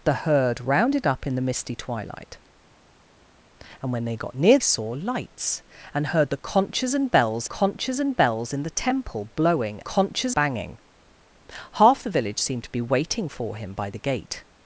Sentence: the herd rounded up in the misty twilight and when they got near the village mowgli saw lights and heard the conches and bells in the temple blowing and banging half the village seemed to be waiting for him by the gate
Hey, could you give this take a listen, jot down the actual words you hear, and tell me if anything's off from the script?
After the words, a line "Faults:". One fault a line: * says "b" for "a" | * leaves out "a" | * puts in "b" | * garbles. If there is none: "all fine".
the herd rounded up in the misty twilight and when they got near saw lights and heard the conches and bells conches and bells in the temple blowing conches banging half the village seemed to be waiting for him by the gate
Faults:
* leaves out "the village mowgli"
* puts in "conches and bells"
* says "conches" for "and"